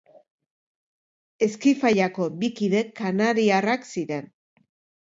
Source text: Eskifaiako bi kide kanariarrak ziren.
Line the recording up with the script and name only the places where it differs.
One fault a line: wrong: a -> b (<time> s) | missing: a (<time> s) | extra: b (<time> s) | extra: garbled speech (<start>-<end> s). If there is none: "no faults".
no faults